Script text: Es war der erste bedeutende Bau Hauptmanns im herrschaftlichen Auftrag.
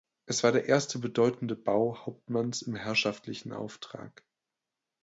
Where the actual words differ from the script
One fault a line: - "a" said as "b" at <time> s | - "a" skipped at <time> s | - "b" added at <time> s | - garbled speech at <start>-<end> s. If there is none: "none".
none